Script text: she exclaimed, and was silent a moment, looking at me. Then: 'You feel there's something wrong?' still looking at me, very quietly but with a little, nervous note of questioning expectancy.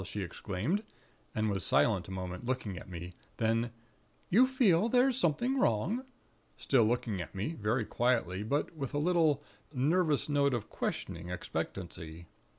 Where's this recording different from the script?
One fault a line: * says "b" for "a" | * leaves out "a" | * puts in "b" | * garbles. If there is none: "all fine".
all fine